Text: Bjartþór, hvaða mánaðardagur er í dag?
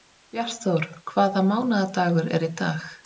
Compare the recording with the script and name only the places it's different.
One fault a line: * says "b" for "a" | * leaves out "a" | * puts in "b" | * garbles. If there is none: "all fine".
all fine